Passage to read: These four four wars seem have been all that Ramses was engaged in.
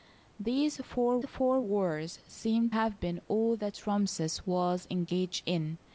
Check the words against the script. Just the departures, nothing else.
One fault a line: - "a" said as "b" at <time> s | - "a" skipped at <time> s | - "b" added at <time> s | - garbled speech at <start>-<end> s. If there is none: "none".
none